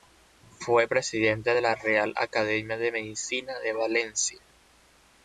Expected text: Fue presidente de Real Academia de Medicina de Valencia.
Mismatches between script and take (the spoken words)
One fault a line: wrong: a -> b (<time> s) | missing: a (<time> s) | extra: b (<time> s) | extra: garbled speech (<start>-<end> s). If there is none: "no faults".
extra: la (1.6 s)